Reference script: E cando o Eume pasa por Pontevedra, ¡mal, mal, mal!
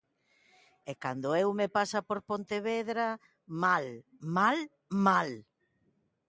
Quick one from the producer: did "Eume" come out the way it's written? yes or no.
yes